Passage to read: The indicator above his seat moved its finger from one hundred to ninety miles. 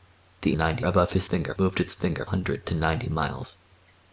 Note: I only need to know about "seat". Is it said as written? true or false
false